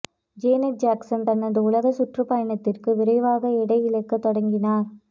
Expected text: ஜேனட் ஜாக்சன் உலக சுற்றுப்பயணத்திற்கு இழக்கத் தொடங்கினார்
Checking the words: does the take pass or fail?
fail